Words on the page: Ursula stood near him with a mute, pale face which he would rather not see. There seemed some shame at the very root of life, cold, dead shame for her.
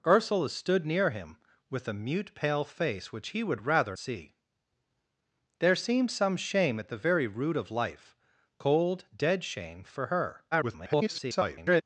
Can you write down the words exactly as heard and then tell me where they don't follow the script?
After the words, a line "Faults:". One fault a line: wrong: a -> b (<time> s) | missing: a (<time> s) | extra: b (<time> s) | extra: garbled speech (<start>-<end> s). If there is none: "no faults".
Ursula stood near him with a mute, pale face which he would rather see. There seemed some shame at the very root of life, cold, dead shame for her. [garbled]
Faults:
missing: not (4.0 s)
extra: garbled speech (10.5-11.8 s)